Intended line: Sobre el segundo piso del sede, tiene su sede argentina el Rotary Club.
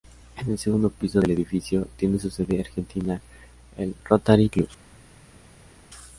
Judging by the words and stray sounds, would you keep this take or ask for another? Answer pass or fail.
fail